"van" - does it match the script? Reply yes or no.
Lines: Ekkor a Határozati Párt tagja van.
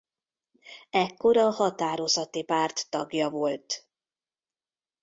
no